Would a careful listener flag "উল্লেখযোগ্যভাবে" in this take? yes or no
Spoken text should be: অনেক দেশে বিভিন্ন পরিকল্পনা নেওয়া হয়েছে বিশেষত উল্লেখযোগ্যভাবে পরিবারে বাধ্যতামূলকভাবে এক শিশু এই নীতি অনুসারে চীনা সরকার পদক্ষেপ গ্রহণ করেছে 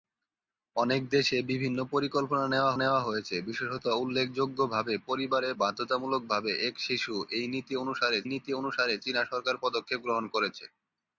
no